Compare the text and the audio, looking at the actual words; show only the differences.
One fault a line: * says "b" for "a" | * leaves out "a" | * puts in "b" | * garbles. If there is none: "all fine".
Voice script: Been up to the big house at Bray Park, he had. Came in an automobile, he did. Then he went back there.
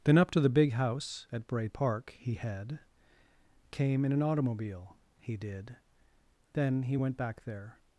* says "Then" for "Been"